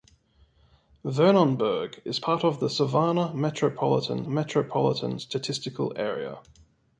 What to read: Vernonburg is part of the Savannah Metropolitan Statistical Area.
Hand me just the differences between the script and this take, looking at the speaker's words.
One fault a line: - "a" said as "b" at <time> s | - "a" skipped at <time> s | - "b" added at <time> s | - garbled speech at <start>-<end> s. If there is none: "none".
- "Metropolitan" added at 4.3 s